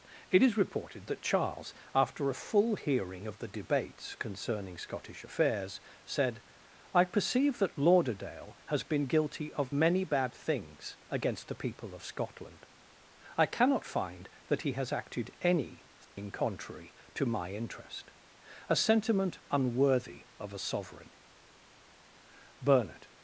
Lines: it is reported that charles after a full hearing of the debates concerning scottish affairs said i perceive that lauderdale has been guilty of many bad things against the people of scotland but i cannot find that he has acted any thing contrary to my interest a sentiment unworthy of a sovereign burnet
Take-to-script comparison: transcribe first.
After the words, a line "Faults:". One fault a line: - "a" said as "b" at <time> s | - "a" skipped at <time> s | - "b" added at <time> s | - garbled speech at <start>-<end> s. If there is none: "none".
it is reported that charles after a full hearing of the debates concerning scottish affairs said i perceive that lauderdale has been guilty of many bad things against the people of scotland i cannot find that he has acted any thing contrary to my interest a sentiment unworthy of a sovereign burnet
Faults:
- "but" skipped at 12.7 s